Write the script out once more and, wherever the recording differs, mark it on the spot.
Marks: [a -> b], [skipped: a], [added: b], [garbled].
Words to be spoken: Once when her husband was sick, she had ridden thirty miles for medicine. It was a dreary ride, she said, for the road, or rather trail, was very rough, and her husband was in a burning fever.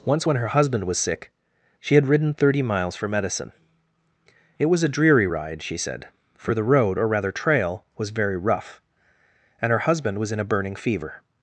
Once when her husband was sick, she had ridden thirty miles for medicine. It was a dreary ride, she said, for the road, or rather trail, was very rough, and her husband was in a burning fever.